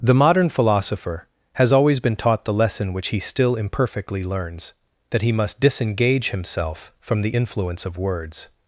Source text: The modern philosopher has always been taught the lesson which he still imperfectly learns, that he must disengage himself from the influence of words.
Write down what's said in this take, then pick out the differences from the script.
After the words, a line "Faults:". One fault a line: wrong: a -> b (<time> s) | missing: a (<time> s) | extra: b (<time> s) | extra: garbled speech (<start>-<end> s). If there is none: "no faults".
The modern philosopher has always been taught the lesson which he still imperfectly learns, that he must disengage himself from the influence of words.
Faults:
no faults